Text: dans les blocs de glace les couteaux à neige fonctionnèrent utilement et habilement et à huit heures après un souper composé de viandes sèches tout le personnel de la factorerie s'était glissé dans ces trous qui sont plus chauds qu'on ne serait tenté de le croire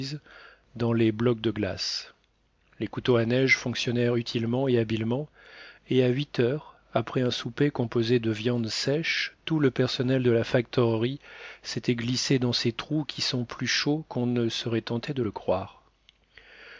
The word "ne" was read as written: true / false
true